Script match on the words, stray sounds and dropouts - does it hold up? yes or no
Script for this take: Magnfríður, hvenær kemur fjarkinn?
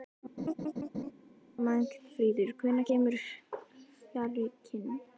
no